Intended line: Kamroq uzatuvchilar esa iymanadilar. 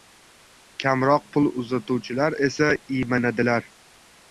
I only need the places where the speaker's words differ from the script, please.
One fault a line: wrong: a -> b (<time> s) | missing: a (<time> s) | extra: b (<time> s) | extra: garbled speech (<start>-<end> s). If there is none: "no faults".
extra: pul (1.3 s)